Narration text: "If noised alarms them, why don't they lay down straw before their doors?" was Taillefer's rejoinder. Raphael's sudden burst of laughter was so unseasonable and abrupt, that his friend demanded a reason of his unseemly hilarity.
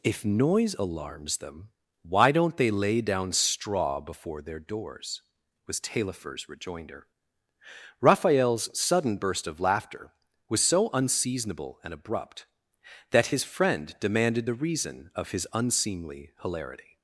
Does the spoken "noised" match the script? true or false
false